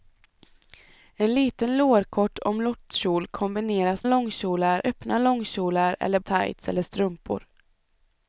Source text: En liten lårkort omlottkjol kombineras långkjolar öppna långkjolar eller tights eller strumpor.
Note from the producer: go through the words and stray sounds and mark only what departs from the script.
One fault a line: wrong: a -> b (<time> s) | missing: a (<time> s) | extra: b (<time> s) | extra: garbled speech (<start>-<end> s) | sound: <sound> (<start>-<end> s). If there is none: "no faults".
no faults